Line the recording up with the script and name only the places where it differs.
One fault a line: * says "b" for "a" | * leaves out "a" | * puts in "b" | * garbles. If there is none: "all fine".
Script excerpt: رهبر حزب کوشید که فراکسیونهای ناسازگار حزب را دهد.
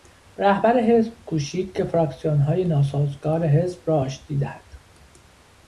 * puts in "آشتی"